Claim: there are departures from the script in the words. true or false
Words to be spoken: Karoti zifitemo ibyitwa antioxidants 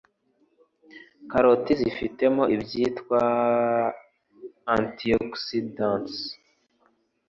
false